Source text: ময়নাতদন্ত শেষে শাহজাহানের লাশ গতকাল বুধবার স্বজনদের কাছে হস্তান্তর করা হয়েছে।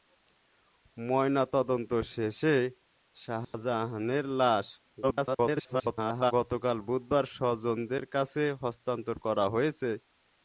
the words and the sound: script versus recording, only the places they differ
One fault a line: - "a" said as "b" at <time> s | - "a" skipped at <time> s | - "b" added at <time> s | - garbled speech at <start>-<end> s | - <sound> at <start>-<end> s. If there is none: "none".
- dropout at 3.4-3.5 s
- garbled speech at 5.0-6.3 s